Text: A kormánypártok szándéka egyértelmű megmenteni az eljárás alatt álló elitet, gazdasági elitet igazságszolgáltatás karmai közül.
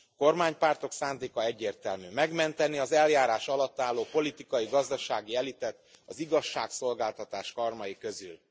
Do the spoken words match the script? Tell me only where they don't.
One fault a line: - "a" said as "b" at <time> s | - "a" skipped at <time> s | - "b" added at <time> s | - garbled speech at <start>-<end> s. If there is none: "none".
- "elitet" said as "politikai" at 4.1 s
- "az" added at 6.0 s